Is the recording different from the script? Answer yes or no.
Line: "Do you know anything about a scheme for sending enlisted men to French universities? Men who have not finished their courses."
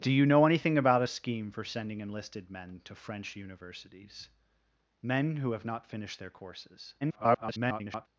yes